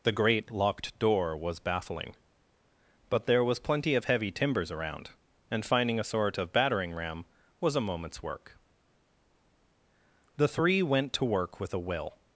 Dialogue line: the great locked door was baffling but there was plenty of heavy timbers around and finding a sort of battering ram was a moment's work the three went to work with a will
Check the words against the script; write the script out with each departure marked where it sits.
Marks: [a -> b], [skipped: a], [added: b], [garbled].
the great locked door was baffling but there was plenty of heavy timbers around and finding a sort of battering ram was a moment's work the three went to work with a will